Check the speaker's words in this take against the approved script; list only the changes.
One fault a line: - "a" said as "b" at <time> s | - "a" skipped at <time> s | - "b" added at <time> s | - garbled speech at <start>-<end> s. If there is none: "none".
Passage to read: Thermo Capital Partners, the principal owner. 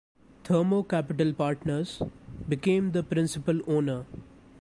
- "became" added at 2.5 s